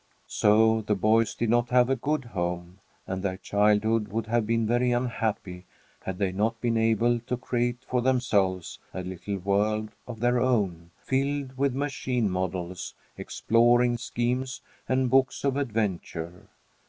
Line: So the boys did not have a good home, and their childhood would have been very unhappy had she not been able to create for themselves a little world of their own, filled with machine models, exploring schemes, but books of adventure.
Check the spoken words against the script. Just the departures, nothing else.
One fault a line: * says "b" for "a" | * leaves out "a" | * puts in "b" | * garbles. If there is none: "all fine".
* says "they" for "she"
* says "and" for "but"